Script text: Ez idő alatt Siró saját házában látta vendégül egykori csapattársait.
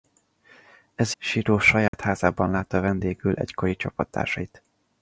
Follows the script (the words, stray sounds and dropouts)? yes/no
no